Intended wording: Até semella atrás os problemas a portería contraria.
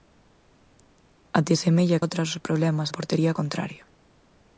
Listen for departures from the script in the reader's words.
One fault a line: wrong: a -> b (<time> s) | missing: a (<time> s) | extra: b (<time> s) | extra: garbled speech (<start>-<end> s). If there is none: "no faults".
no faults